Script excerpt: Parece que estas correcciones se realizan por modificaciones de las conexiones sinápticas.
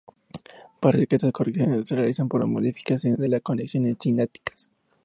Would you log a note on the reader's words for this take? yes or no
no